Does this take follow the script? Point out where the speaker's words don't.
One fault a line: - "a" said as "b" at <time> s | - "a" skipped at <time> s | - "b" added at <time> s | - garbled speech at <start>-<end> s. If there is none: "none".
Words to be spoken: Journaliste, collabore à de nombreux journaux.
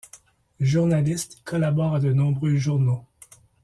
none